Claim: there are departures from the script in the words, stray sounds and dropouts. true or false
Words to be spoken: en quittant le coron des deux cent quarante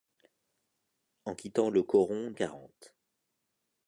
true